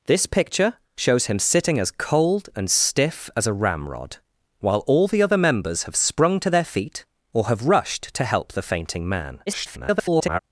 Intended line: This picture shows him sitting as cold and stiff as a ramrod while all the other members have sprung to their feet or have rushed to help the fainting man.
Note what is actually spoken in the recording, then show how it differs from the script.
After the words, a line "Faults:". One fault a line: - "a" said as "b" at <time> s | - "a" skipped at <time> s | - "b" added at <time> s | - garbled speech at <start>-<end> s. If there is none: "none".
This picture shows him sitting as cold and stiff as a ramrod while all the other members have sprung to their feet or have rushed to help the fainting man. [garbled]
Faults:
- garbled speech at 9.5-10.4 s